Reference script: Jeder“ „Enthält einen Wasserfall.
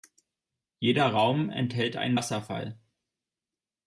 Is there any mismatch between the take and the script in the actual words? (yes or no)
yes